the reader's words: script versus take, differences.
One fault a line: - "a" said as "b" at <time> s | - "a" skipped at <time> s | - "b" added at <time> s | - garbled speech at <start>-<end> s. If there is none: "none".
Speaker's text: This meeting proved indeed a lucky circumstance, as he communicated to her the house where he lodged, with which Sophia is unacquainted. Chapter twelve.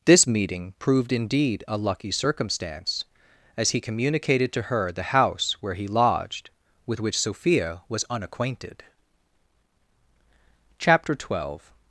- "is" said as "was" at 7.9 s